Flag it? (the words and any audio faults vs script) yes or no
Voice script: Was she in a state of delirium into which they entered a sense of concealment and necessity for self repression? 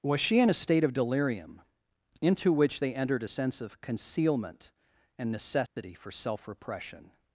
yes